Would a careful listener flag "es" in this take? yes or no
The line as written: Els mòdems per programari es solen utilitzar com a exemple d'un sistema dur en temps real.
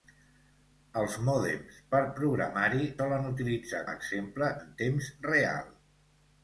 yes